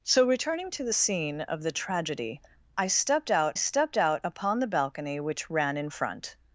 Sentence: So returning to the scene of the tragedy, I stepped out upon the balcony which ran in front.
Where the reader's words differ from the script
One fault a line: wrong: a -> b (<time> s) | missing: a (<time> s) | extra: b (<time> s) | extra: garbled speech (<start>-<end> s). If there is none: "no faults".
extra: stepped out (3.5 s)